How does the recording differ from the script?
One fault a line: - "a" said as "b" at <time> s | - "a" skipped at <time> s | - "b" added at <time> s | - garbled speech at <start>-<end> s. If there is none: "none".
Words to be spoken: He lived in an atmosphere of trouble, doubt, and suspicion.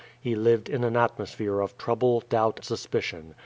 - "and" skipped at 2.6 s